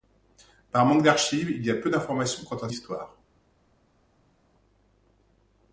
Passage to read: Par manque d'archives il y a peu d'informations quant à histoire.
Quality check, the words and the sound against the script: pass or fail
pass